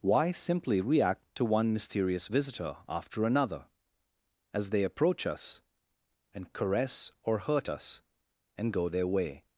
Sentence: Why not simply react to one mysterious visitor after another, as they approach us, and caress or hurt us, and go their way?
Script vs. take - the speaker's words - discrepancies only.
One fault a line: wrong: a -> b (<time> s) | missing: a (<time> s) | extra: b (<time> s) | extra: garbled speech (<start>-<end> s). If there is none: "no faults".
missing: not (0.3 s)